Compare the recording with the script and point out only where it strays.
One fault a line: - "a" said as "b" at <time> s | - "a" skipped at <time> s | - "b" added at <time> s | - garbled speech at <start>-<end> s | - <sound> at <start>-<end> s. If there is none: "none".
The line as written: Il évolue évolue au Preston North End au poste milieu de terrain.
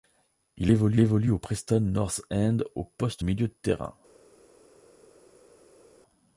none